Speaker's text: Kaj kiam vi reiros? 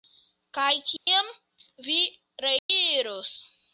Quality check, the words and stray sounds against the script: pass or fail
fail